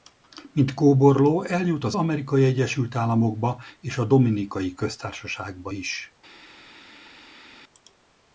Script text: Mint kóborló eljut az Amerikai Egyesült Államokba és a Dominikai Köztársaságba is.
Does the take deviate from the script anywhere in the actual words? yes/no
no